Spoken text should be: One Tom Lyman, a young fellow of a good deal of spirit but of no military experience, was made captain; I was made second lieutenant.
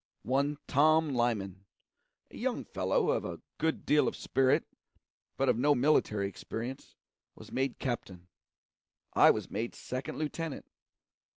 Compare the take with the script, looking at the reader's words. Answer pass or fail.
pass